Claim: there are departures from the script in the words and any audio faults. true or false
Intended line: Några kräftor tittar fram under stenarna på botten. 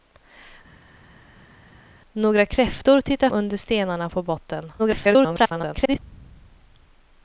true